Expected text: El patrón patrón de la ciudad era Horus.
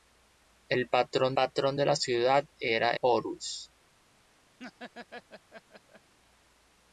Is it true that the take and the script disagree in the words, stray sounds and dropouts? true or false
true